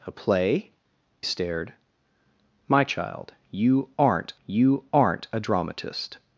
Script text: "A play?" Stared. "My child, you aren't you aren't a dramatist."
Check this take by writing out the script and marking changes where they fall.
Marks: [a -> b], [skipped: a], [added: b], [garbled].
"A play?" Stared. "My child, you aren't you aren't a dramatist."